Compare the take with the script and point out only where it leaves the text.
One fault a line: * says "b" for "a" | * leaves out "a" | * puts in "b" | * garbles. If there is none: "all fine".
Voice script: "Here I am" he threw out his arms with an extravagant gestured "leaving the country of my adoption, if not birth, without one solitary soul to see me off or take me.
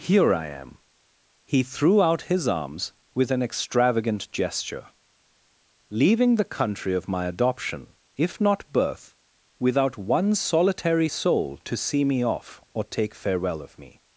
* says "gesture" for "gestured"
* puts in "farewell of"